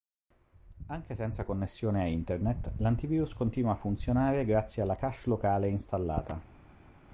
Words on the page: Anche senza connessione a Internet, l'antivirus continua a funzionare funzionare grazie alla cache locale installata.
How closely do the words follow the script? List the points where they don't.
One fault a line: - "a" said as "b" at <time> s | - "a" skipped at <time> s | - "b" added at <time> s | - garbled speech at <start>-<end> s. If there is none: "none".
- "funzionare" skipped at 4.5 s